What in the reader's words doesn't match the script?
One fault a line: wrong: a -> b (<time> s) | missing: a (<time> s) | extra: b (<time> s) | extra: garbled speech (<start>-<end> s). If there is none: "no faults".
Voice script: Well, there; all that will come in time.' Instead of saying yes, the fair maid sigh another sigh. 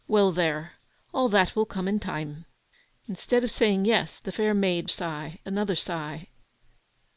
no faults